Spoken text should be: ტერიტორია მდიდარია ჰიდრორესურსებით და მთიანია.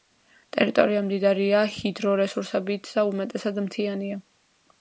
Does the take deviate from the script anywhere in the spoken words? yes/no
yes